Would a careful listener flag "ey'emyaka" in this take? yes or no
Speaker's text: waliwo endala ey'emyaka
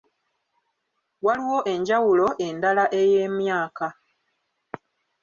no